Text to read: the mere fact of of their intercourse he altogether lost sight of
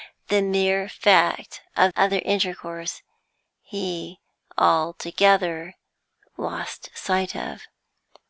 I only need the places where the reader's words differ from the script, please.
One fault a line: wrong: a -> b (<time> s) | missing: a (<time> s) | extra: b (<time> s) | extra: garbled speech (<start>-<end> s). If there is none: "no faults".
no faults